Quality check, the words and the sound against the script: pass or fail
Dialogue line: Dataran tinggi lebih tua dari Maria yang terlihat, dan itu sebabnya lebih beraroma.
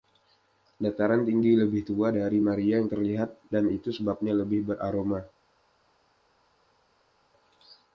pass